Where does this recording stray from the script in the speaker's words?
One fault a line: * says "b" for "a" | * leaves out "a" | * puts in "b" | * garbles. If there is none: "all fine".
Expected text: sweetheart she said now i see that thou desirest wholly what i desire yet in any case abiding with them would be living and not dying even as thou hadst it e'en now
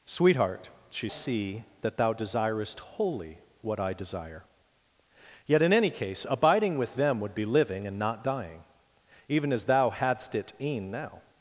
* leaves out "said now i"